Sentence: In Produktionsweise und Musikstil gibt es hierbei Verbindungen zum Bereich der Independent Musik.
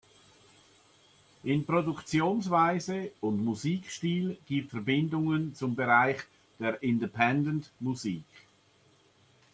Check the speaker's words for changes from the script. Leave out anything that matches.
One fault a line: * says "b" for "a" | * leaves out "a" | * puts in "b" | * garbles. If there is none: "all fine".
* leaves out "es hierbei"